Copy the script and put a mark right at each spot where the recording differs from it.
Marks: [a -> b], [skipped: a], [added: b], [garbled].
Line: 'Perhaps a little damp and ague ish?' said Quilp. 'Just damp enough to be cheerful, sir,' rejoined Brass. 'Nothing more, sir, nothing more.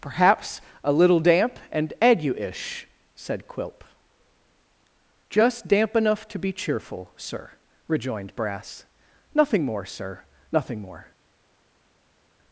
'Perhaps a little damp and ague ish?' said Quilp. 'Just damp enough to be cheerful, sir,' rejoined Brass. 'Nothing more, sir, nothing more.